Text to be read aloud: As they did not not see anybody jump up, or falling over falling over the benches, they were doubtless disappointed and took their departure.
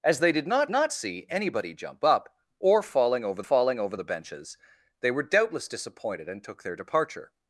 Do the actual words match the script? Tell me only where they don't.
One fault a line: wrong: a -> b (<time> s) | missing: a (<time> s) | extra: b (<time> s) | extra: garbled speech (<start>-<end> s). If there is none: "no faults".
no faults